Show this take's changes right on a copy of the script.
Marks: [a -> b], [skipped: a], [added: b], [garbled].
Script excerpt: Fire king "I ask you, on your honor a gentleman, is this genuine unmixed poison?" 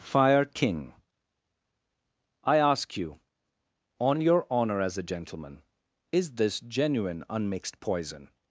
Fire king "I ask you, on your honor [added: as] a gentleman, is this genuine unmixed poison?"